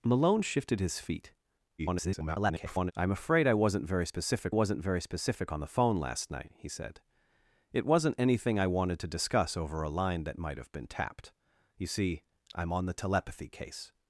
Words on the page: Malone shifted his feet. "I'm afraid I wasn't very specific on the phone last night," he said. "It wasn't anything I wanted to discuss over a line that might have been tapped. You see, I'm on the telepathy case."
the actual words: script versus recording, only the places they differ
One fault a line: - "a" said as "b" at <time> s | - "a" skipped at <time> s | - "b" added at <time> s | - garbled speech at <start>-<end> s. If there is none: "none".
- garbled speech at 1.8-2.9 s
- "wasn't very specific" added at 4.5 s